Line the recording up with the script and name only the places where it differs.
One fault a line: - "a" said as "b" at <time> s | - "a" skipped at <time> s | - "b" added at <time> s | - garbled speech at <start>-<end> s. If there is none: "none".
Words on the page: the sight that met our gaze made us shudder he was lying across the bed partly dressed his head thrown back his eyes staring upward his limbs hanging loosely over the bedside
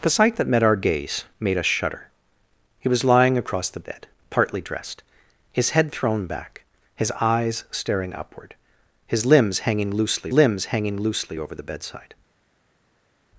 - "limbs hanging loosely" added at 10.3 s